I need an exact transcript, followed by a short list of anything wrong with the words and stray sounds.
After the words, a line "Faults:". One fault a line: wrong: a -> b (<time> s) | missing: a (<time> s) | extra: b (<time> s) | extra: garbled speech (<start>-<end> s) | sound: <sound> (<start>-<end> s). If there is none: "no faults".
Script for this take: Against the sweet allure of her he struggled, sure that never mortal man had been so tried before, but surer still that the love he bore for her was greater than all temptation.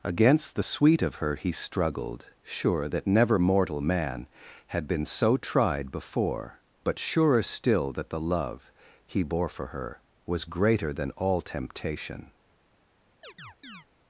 Against the sweet of her he struggled, sure that never mortal man had been so tried before, but surer still that the love he bore for her was greater than all temptation.
Faults:
missing: allure (1.0 s)
sound: chirp (13.2-13.9 s)